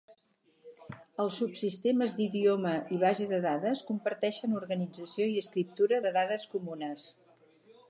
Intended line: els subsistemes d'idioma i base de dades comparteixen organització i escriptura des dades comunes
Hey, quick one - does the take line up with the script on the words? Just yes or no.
no